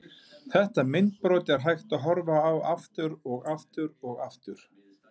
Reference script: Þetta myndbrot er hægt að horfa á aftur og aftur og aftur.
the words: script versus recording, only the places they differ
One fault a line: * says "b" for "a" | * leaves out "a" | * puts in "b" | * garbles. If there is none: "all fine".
all fine